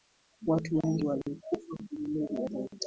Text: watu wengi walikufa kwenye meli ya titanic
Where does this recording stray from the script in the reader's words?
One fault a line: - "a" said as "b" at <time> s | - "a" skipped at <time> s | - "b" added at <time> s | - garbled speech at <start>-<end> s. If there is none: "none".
none